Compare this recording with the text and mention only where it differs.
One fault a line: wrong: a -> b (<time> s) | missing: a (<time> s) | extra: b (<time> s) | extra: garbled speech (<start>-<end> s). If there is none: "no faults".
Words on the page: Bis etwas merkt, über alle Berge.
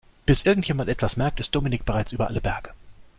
extra: irgendjemand (0.4 s)
extra: ist Dominik bereits (1.4 s)